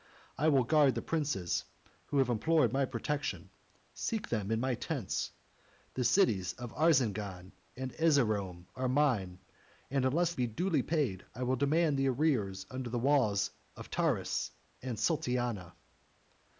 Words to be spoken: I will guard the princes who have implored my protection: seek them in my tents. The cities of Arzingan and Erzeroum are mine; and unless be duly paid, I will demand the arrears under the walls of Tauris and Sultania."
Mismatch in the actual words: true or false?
false